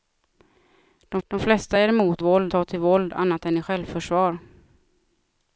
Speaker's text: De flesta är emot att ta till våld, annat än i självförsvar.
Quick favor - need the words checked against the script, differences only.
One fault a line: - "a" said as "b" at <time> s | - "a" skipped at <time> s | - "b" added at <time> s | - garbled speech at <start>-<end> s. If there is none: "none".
- "de" added at 1.3 s
- "att" said as "våld" at 2.2 s